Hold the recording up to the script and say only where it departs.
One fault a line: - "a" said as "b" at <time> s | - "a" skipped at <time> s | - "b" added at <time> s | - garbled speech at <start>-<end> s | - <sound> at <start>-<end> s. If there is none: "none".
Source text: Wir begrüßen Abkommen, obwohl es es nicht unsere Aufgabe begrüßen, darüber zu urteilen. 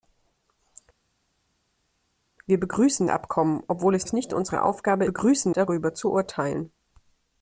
none